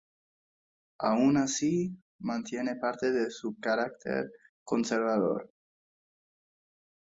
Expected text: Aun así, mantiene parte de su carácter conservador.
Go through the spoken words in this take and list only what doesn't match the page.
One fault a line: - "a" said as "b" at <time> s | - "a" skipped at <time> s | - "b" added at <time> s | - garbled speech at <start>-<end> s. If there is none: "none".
none